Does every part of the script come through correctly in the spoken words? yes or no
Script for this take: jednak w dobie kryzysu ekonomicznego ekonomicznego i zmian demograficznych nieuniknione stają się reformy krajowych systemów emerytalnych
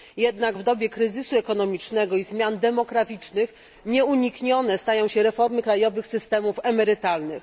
no